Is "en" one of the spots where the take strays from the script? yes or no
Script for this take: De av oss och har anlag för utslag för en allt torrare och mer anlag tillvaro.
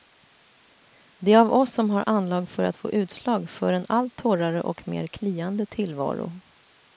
no